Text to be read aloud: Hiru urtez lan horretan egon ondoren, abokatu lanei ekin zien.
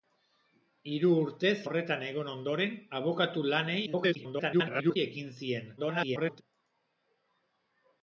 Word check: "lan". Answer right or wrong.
wrong